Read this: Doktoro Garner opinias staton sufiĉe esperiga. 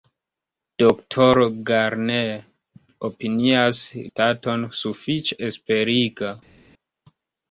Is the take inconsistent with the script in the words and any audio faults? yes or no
no